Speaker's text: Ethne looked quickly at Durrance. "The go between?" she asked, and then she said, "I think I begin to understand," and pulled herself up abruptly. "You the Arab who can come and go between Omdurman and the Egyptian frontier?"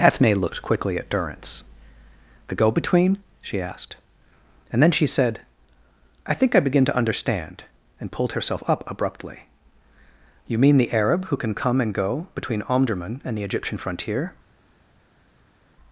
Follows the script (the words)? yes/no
no